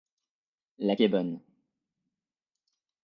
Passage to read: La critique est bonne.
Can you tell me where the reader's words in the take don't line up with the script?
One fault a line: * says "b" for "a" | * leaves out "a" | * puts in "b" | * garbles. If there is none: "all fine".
* leaves out "critique"